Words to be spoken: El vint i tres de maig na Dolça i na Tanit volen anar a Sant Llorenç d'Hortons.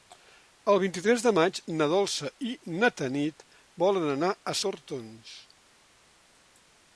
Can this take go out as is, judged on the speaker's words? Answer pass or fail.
fail